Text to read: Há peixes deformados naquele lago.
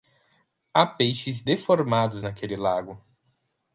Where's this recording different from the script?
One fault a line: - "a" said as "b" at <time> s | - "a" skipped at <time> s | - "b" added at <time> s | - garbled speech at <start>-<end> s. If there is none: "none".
none